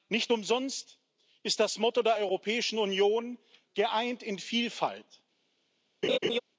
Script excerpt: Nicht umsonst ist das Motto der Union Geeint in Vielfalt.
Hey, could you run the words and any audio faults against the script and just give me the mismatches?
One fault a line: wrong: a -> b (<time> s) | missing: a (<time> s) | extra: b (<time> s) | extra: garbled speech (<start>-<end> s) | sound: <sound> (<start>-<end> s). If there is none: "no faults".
extra: Europäischen (2.1 s)
sound: laugh (6.0-6.4 s)